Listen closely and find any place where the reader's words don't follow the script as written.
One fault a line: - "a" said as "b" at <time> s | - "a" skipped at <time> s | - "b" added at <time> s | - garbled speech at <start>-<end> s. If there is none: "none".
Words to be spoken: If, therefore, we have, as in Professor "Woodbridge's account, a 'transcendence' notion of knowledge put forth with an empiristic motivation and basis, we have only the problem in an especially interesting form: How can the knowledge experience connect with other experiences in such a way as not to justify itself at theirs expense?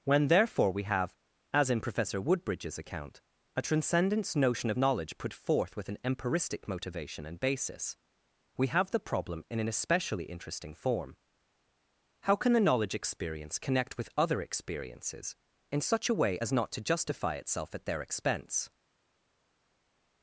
- "If" said as "When" at 0.0 s
- "only" skipped at 8.9 s
- "theirs" said as "their" at 17.9 s